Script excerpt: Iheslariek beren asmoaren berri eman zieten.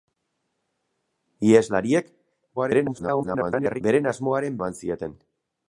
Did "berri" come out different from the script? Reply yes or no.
yes